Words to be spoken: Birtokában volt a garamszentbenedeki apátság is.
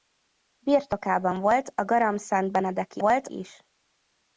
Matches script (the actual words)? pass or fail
fail